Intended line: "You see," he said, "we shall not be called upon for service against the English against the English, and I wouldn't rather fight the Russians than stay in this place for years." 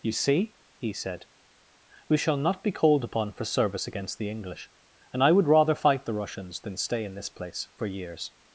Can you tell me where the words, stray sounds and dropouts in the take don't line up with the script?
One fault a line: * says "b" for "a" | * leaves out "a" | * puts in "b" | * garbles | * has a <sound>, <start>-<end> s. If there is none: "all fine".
* leaves out "against the English"
* says "would" for "wouldn't"